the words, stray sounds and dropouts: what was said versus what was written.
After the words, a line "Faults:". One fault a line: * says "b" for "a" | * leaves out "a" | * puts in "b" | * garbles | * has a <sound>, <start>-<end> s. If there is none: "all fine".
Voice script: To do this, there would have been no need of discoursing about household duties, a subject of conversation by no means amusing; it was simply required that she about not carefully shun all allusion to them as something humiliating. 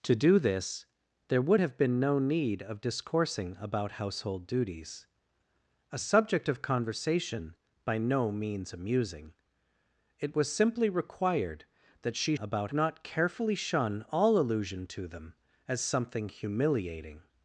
To do this, there would have been no need of discoursing about household duties, a subject of conversation by no means amusing; it was simply required that she about not carefully shun all allusion to them as something humiliating.
Faults:
all fine